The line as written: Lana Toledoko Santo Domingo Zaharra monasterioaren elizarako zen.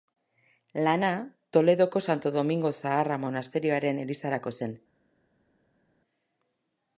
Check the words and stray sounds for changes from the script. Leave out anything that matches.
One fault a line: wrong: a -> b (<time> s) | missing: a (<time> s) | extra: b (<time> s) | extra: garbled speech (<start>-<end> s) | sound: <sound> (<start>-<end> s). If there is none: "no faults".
no faults